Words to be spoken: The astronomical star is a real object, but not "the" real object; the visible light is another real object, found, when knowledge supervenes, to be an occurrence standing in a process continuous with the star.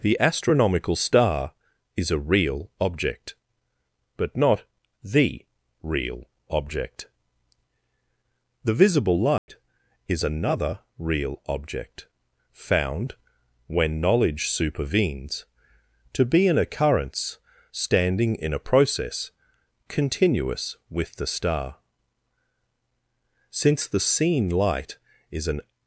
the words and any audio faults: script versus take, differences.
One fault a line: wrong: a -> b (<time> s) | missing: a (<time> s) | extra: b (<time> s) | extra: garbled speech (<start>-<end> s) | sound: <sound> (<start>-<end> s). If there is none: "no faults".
sound: dropout (9.4-9.5 s)
extra: Since the seen light is an (23.5 s)